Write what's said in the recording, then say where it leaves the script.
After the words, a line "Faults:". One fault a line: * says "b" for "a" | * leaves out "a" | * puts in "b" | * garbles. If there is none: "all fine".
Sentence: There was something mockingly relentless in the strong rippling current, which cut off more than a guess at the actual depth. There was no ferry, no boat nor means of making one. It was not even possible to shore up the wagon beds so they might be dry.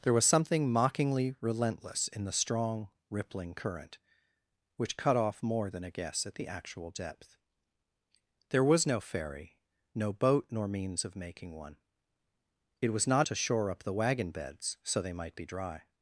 There was something mockingly relentless in the strong rippling current, which cut off more than a guess at the actual depth. There was no ferry, no boat nor means of making one. It was not to shore up the wagon beds so they might be dry.
Faults:
* leaves out "even possible"